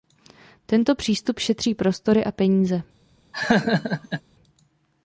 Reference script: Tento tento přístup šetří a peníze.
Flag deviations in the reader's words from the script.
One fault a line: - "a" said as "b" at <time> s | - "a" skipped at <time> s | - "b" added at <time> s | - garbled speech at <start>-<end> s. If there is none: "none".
- "tento" skipped at 0.9 s
- "prostory" added at 1.8 s